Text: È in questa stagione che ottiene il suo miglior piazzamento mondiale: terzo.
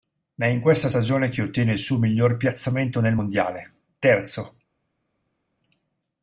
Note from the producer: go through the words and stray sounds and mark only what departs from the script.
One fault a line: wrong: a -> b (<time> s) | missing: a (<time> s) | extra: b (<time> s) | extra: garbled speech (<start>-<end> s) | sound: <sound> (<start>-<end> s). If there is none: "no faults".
extra: nel (3.0 s)